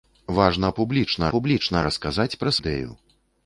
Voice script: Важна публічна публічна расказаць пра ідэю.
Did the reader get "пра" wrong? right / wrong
right